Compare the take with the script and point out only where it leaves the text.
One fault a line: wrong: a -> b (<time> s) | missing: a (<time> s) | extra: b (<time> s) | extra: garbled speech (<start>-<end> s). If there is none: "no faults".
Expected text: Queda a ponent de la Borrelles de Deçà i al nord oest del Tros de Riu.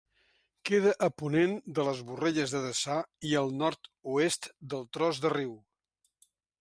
wrong: la -> les (1.9 s)